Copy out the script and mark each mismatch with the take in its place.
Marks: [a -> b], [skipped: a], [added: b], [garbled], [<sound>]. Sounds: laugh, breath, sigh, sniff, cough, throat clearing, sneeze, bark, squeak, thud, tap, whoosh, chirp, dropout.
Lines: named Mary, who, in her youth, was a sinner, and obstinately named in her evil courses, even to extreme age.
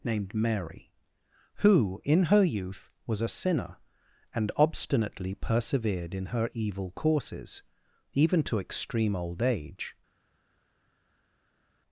named Mary, who, in her youth, was a sinner, and obstinately [named -> persevered] in her evil courses, even to extreme [added: old] age.